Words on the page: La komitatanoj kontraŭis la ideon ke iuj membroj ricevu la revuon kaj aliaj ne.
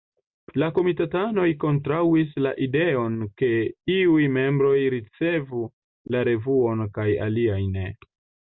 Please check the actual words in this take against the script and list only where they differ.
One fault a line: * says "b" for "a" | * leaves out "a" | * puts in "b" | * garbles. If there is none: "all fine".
all fine